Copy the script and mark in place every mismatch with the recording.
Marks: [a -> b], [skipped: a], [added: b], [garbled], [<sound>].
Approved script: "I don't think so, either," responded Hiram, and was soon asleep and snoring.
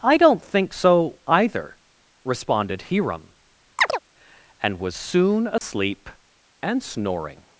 "I don't think so, either," responded Hiram, [chirp] and was soon asleep [dropout] and snoring.